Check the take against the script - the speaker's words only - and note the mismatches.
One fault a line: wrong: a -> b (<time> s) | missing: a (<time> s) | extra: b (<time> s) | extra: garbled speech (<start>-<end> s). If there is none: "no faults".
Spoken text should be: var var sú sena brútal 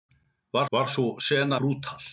no faults